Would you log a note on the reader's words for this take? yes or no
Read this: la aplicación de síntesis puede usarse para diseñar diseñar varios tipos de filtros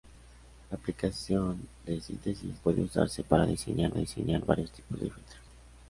no